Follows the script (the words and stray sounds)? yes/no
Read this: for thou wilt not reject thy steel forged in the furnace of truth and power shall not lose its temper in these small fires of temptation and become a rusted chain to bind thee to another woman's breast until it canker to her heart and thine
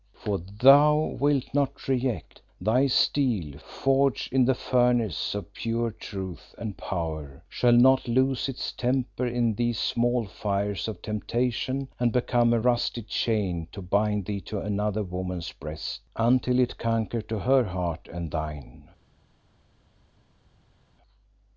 no